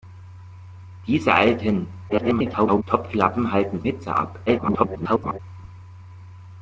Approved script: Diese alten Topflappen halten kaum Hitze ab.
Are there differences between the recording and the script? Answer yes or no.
yes